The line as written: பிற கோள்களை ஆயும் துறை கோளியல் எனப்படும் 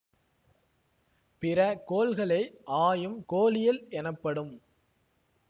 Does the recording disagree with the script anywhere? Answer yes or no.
yes